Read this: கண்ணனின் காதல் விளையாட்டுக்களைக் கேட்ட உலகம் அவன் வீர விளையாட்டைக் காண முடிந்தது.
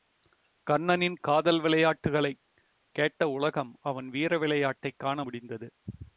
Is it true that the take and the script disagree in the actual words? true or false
false